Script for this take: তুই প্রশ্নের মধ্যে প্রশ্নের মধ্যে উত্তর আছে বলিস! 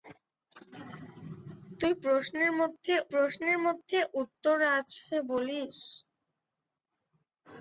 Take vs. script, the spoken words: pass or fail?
pass